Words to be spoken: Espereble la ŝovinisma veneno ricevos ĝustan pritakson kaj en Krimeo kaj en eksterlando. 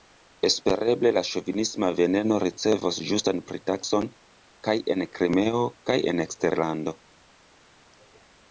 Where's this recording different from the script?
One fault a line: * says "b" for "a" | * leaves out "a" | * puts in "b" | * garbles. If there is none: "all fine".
all fine